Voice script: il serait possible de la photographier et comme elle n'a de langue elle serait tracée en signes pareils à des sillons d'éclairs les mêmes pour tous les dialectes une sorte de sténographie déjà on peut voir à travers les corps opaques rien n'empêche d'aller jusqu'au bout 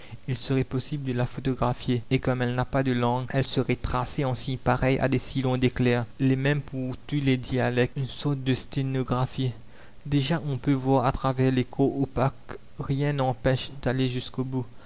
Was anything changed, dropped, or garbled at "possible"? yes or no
no